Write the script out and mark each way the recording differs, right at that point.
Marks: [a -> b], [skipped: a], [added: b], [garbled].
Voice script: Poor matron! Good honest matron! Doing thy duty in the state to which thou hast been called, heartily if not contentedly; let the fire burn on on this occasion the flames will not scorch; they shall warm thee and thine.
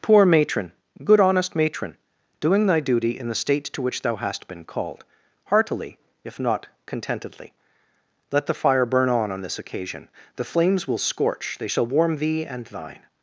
Poor matron! Good honest matron! Doing thy duty in the state to which thou hast been called, heartily if not contentedly; let the fire burn on on this occasion the flames will [skipped: not] scorch; they shall warm thee and thine.